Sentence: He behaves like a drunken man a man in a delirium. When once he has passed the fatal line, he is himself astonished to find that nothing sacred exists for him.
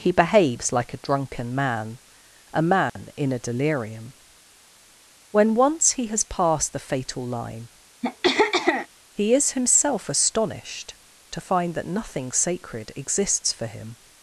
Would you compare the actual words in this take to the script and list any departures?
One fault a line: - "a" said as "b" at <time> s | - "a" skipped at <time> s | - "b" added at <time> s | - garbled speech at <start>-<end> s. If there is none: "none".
none